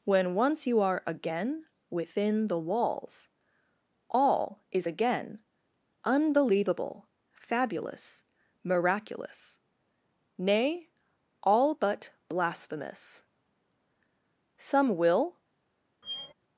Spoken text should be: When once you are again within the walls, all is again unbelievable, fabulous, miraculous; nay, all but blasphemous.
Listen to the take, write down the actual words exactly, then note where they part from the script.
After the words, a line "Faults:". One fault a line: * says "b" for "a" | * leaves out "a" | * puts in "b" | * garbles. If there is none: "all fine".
When once you are again within the walls, all is again unbelievable, fabulous, miraculous; nay, all but blasphemous. Some will
Faults:
* puts in "Some will"